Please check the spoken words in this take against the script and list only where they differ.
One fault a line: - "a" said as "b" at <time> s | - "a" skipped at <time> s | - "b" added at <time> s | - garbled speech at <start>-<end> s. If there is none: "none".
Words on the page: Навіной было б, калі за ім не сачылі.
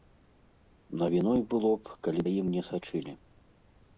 none